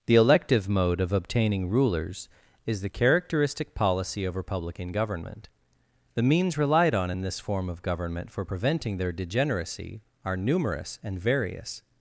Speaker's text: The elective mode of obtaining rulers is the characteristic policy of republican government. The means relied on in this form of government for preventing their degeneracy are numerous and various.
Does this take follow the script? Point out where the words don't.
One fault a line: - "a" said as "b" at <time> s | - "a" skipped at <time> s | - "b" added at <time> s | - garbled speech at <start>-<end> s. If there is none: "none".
none